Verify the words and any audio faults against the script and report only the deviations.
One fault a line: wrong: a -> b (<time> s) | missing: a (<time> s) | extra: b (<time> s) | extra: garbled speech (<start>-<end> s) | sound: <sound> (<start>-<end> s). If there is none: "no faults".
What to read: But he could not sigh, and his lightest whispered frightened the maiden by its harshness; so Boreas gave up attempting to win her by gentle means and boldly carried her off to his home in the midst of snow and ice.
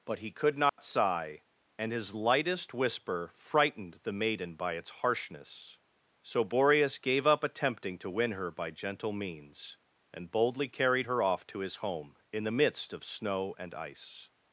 sound: dropout (0.7-0.8 s)
wrong: whispered -> whisper (2.7 s)